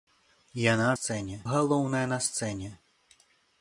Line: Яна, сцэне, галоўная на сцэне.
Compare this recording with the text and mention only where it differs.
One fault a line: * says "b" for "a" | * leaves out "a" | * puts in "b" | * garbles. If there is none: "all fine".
all fine